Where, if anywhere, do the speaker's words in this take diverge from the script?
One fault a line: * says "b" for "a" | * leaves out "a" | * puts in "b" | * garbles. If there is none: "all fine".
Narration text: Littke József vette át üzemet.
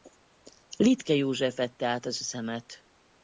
* puts in "az"